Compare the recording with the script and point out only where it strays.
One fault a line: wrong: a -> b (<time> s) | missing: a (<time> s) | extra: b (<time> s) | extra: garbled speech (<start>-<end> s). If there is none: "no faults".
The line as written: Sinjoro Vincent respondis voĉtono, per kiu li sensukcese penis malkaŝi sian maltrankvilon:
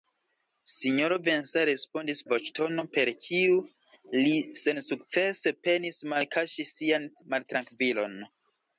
no faults